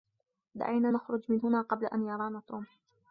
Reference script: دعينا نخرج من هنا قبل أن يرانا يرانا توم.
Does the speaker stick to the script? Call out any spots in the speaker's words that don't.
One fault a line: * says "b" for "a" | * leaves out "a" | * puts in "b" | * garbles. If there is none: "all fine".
* leaves out "يرانا"